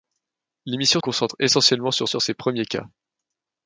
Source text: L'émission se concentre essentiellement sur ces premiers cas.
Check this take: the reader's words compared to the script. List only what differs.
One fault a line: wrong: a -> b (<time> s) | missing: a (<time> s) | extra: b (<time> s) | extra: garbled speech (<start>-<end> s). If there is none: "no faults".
missing: se (1.0 s)
extra: sur (2.0 s)